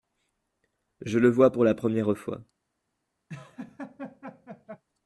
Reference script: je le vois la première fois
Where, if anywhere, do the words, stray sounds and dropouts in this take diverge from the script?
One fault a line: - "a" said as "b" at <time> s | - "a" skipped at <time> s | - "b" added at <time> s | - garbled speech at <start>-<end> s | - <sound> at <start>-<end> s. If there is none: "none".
- "pour" added at 1.5 s
- laugh at 3.3-4.8 s